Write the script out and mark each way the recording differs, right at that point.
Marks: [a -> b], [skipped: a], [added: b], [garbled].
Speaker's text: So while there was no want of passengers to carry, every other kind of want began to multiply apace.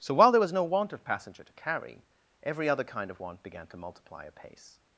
So while there was no want of [passengers -> passenger] to carry, every other kind of want began to multiply apace.